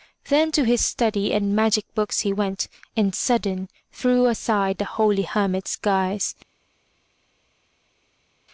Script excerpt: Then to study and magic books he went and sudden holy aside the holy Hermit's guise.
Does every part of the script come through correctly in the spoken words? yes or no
no